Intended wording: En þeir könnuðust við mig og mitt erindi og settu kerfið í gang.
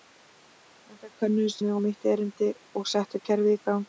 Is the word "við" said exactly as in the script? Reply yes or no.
no